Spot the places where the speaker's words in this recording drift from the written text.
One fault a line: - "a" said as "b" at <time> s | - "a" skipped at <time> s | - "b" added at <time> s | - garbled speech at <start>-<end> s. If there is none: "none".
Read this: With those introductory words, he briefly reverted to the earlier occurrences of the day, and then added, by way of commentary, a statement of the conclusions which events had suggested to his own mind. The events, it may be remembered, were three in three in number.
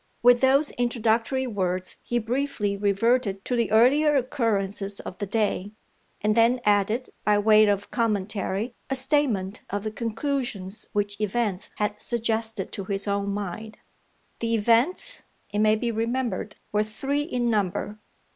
- "three in" skipped at 17.5 s